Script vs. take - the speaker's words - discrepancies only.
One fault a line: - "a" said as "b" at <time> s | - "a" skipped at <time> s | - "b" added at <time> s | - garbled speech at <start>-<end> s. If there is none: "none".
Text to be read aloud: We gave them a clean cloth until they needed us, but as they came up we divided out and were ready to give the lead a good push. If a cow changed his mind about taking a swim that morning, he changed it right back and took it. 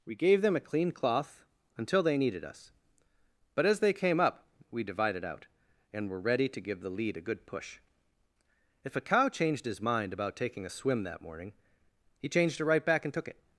none